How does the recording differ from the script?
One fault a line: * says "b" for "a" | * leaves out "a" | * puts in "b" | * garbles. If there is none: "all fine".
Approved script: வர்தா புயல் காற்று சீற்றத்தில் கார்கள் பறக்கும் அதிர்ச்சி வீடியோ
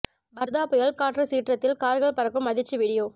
all fine